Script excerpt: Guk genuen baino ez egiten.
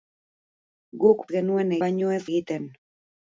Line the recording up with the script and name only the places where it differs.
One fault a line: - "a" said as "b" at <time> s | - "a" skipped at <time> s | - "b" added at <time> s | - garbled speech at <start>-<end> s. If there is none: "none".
none